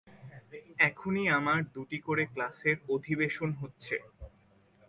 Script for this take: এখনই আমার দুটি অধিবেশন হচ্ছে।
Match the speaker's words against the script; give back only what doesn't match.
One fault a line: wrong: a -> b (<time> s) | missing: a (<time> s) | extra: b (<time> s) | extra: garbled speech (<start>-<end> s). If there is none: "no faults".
extra: করে ক্লাসের (2.0 s)